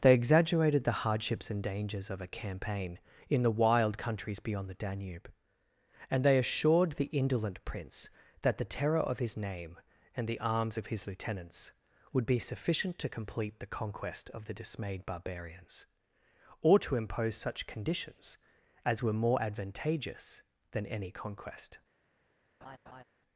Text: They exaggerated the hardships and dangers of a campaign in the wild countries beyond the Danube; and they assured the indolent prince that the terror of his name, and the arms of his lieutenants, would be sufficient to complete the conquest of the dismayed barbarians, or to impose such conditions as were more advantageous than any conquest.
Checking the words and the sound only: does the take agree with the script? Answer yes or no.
no